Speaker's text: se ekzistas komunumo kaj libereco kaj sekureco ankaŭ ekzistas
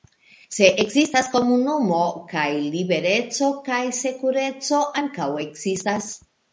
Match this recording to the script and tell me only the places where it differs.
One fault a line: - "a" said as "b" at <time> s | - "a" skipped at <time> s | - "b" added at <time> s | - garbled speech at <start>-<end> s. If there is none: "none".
none